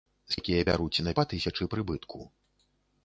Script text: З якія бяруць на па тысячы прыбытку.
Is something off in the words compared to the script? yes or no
no